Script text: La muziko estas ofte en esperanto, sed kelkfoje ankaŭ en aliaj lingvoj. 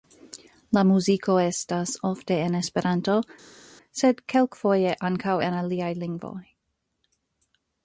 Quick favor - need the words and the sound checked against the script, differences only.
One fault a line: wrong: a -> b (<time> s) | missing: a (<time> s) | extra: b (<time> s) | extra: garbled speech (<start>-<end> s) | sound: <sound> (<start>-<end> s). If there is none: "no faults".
no faults